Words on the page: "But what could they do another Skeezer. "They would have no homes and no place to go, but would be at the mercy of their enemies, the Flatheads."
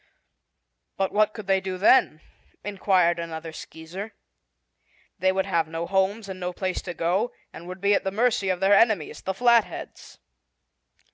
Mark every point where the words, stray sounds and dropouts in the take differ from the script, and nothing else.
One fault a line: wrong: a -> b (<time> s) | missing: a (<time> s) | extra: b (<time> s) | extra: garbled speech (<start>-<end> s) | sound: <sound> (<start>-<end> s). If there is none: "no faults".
extra: then inquired (1.8 s)
wrong: but -> and (7.5 s)